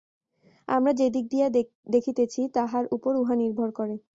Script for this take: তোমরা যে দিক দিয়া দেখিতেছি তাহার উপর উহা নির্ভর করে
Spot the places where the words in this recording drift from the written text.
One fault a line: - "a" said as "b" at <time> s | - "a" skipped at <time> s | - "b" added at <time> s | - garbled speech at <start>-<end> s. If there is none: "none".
- "তোমরা" said as "আমরা" at 0.7 s